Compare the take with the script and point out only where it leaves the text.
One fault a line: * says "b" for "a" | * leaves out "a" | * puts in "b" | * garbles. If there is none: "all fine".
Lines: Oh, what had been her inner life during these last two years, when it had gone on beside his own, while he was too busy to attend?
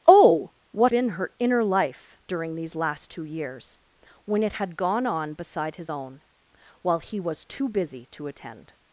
* leaves out "had"